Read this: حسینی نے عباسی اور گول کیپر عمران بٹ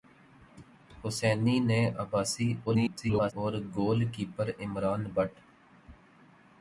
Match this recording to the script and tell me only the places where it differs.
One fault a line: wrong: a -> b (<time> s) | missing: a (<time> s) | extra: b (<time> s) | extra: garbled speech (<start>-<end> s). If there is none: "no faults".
extra: garbled speech (2.7-3.3 s)